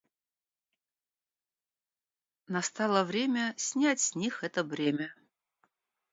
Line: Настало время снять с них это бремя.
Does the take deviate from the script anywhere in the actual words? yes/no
no